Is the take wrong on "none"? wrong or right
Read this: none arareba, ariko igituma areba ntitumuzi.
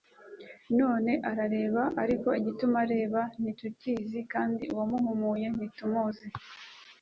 right